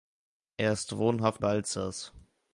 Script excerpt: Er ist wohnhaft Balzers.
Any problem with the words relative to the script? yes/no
no